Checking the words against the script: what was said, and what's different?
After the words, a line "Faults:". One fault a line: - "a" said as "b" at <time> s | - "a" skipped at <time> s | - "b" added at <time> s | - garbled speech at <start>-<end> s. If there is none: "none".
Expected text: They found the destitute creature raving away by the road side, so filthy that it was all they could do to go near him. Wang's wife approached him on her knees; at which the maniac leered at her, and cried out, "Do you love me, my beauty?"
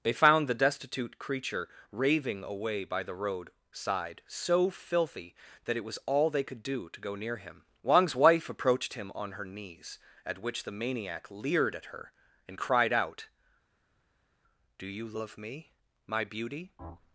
They found the destitute creature raving away by the road side, so filthy that it was all they could do to go near him. Wang's wife approached him on her knees; at which the maniac leered at her, and cried out, "Do you love me, my beauty?"
Faults:
none